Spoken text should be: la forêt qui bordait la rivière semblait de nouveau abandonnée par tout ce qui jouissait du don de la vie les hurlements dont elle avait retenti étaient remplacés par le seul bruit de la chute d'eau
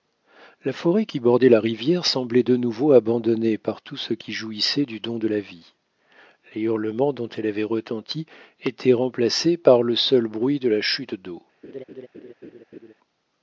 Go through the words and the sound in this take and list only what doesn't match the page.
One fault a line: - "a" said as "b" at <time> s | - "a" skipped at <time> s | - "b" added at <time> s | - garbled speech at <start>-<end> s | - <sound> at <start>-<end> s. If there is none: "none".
- laugh at 11.6-12.9 s